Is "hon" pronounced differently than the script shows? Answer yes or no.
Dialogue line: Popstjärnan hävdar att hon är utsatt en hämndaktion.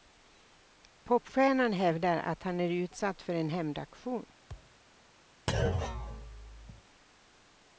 yes